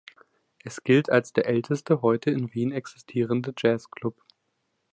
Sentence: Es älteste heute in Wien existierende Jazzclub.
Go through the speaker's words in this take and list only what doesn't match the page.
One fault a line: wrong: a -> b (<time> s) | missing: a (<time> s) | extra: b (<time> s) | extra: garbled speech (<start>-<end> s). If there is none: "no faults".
extra: gilt als der (0.8 s)